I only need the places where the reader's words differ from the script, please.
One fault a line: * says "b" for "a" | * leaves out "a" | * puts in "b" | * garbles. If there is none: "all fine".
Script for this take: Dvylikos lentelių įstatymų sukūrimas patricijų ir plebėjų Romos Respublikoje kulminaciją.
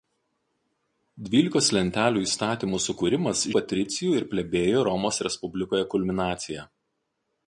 all fine